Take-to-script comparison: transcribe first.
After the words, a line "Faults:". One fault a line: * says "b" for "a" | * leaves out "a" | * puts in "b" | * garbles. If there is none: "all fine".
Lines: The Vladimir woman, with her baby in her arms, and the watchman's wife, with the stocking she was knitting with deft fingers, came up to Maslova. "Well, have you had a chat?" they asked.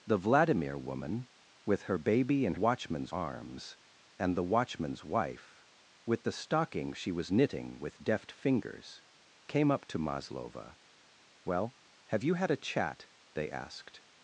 The Vladimir woman, with her baby in watchman's arms, and the watchman's wife, with the stocking she was knitting with deft fingers, came up to Maslova. "Well, have you had a chat?" they asked.
Faults:
* says "watchman's" for "her"